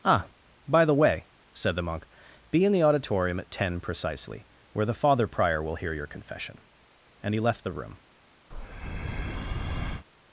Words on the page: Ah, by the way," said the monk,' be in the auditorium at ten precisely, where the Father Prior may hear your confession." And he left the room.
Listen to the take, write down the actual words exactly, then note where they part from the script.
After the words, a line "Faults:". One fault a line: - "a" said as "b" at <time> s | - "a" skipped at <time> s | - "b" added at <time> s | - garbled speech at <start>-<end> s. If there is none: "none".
Ah, by the way," said the monk,' be in the auditorium at ten precisely, where the Father Prior will hear your confession." And he left the room.
Faults:
- "may" said as "will" at 5.6 s